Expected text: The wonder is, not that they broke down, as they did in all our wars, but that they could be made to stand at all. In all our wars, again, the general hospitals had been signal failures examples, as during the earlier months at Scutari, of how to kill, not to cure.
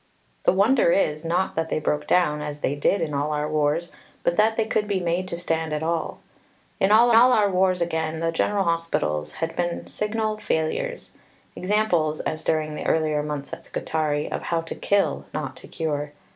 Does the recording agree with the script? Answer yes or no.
no